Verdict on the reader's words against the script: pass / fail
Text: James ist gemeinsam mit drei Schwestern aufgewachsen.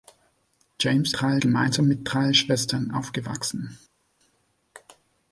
fail